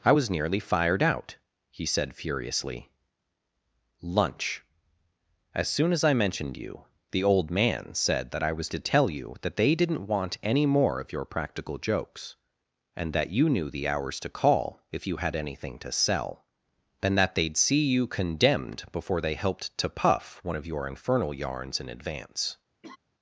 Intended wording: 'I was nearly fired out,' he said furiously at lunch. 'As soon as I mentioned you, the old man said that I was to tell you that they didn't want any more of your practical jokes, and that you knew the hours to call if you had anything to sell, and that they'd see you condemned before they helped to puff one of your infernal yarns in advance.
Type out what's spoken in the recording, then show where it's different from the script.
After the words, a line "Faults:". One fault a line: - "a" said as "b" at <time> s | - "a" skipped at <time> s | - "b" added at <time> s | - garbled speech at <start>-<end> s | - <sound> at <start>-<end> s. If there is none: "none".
'I was nearly fired out,' he said furiously lunch. 'As soon as I mentioned you, the old man said that I was to tell you that they didn't want any more of your practical jokes, and that you knew the hours to call if you had anything to sell, and that they'd see you condemned before they helped to puff one of your infernal yarns in advance.
Faults:
- "at" skipped at 2.9 s
- laugh at 22.8-23.0 s